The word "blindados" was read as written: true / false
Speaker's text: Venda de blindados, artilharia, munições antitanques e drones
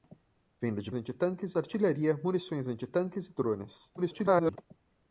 false